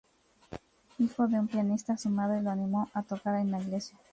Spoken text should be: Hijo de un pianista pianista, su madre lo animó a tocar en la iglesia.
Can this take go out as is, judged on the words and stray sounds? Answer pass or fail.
fail